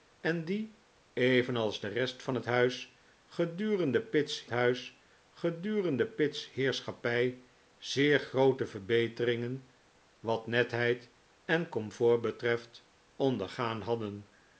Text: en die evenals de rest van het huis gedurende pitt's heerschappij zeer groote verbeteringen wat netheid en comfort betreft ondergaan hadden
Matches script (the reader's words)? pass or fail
fail